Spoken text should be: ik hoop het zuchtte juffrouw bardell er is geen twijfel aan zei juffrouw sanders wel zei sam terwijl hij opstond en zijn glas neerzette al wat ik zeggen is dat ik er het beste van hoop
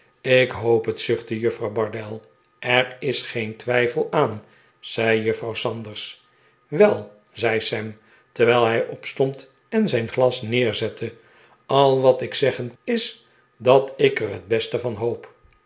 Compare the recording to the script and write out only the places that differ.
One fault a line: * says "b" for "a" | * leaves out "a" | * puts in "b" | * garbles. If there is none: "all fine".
all fine